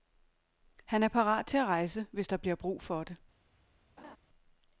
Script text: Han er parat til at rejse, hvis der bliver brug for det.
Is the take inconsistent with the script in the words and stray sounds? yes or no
yes